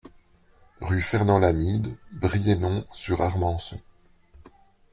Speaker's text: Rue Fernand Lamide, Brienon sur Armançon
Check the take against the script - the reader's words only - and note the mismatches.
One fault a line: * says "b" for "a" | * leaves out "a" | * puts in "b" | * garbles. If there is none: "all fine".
all fine